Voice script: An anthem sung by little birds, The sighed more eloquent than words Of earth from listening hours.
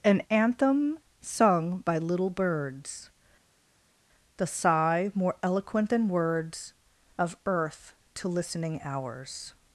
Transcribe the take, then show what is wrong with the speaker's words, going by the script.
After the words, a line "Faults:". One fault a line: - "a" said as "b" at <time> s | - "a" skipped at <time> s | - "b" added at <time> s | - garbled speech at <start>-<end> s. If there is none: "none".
An anthem sung by little birds, The sigh more eloquent than words Of earth to listening hours.
Faults:
- "sighed" said as "sigh" at 4.5 s
- "from" said as "to" at 8.1 s